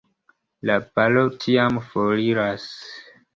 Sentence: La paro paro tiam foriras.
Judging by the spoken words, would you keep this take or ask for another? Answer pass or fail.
fail